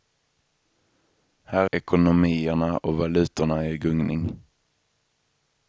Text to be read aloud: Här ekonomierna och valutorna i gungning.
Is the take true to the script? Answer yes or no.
yes